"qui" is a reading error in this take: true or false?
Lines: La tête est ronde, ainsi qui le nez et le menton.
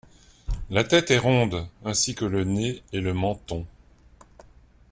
true